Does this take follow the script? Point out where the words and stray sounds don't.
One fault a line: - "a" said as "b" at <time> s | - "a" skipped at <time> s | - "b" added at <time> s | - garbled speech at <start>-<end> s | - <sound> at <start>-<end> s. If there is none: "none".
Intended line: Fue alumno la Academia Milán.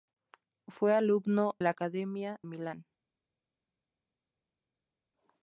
none